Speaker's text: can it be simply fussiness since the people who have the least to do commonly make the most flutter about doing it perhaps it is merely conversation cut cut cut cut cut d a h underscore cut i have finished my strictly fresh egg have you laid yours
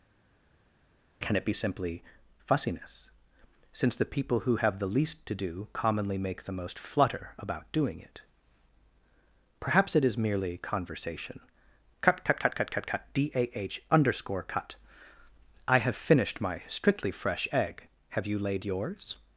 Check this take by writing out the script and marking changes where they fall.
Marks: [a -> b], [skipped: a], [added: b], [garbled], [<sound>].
can it be simply fussiness since the people who have the least to do commonly make the most flutter about doing it perhaps it is merely conversation cut cut cut cut cut [added: cut] d a h underscore cut i have finished my strictly fresh egg have you laid yours